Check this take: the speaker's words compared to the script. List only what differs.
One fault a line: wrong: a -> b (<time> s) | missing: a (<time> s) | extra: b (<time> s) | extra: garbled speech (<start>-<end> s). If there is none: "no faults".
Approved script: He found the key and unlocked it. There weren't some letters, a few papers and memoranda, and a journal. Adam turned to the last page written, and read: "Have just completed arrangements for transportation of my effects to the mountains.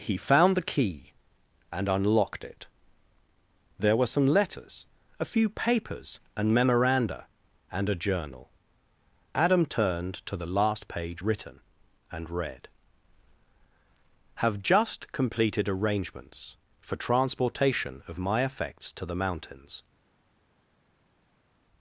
wrong: weren't -> were (4.0 s)